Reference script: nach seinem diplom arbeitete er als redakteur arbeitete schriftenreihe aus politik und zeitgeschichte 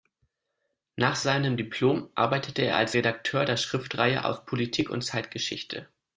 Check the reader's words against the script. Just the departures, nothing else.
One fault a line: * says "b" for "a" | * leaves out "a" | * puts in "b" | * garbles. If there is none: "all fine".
* says "der" for "arbeitete"